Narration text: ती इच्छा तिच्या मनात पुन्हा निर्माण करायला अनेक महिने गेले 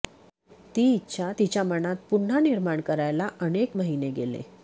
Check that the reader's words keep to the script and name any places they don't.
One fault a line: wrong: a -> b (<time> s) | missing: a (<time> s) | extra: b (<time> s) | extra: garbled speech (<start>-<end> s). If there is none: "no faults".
no faults